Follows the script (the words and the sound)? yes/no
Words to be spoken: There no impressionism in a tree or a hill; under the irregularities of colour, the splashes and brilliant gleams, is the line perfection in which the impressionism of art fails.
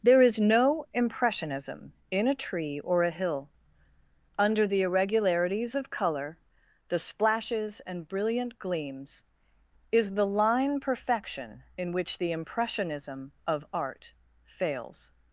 no